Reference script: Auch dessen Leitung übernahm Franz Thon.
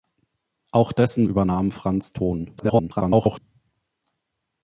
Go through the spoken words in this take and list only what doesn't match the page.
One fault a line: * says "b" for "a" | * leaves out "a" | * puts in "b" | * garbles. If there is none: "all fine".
* leaves out "Leitung"
* garbles